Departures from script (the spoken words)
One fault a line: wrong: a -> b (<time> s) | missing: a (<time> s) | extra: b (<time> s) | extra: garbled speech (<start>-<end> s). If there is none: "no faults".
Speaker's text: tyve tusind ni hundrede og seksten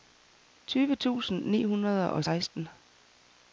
no faults